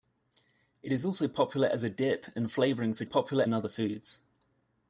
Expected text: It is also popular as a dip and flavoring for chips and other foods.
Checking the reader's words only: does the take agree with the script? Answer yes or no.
no